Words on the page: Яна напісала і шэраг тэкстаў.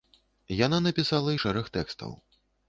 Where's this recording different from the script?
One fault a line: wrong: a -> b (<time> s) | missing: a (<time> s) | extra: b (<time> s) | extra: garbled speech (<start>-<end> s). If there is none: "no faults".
no faults